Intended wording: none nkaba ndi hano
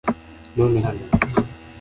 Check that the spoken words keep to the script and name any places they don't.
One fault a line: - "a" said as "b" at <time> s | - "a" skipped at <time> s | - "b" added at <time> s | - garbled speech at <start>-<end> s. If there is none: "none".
- "nkaba ndi" skipped at 0.8 s